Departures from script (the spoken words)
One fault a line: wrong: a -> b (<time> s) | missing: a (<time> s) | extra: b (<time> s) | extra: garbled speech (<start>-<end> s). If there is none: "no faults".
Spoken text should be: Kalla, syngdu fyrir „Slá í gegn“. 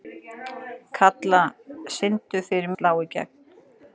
no faults